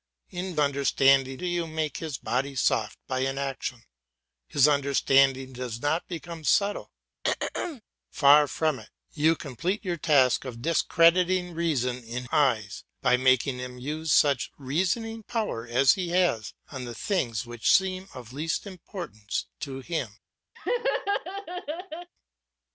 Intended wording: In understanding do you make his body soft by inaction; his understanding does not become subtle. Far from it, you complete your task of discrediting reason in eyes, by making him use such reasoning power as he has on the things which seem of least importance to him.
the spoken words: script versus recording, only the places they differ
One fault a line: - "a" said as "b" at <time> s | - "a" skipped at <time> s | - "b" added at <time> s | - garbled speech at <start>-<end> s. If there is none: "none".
none